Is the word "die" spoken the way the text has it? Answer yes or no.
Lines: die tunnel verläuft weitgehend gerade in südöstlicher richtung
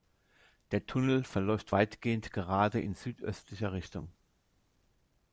no